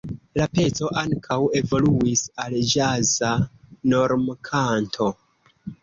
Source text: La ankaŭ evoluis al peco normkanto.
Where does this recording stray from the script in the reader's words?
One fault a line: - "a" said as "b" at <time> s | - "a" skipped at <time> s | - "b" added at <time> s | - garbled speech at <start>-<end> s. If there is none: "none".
- "peco" added at 0.6 s
- "peco" said as "ĵaza" at 2.8 s